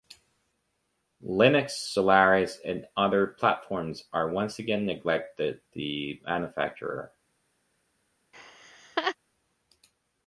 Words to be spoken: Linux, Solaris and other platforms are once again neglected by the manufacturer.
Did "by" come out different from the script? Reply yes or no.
yes